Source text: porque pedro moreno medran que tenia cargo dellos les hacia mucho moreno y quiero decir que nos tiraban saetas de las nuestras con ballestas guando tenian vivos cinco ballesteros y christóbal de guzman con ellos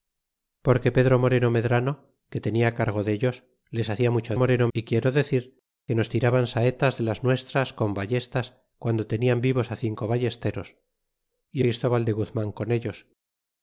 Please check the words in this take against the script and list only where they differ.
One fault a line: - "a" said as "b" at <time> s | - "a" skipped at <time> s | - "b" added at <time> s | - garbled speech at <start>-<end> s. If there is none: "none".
none